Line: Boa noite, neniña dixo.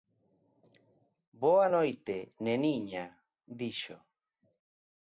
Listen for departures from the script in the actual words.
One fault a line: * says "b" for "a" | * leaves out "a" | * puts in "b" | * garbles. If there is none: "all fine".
all fine